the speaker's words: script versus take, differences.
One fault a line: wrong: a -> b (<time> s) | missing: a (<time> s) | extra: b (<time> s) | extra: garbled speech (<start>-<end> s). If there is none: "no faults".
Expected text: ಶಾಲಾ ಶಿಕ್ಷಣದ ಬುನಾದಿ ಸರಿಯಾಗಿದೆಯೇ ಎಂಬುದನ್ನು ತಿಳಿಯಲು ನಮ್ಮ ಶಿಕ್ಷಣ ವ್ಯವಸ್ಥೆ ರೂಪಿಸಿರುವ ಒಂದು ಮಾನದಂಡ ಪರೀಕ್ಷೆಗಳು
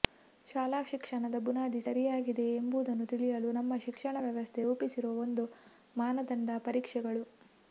no faults